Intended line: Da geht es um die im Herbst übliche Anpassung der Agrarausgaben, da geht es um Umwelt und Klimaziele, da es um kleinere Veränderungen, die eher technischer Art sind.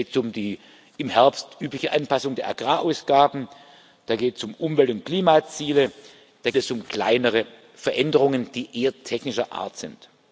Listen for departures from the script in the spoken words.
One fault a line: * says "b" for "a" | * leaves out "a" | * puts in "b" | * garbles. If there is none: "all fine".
all fine